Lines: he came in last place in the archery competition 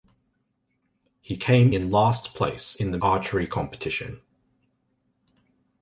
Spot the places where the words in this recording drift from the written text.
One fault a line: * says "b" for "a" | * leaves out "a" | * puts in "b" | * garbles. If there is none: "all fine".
all fine